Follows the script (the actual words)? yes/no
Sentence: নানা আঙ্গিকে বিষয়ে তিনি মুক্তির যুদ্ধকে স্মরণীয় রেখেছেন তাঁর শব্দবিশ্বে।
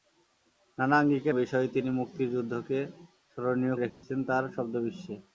yes